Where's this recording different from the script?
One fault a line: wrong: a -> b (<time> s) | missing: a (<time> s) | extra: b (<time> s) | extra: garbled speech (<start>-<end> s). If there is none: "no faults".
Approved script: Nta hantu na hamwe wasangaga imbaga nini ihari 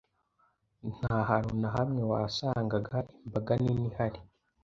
no faults